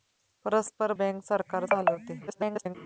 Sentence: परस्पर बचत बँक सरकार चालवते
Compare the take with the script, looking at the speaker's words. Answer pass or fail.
fail